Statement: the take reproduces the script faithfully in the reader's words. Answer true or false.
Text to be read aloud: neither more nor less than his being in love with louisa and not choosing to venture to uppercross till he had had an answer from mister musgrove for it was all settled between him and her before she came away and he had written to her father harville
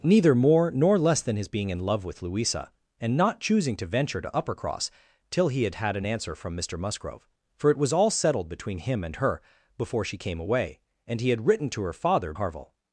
true